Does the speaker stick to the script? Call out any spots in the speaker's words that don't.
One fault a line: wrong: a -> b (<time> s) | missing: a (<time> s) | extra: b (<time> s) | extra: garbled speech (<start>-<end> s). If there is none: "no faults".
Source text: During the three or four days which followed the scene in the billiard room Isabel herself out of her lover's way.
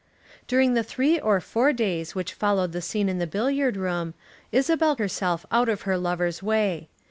no faults